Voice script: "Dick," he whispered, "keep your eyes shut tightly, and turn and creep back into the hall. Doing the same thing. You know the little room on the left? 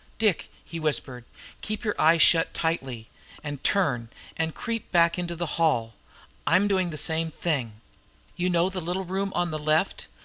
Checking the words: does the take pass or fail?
fail